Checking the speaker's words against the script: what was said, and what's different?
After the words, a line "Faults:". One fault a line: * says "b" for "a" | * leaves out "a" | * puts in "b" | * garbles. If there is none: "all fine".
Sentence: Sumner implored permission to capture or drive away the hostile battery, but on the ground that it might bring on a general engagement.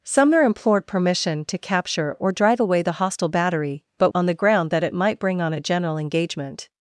Sumner implored permission to capture or drive away the hostile battery, but on the ground that it might bring on a general engagement.
Faults:
all fine